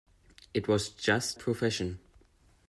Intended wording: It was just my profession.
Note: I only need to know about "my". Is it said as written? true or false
false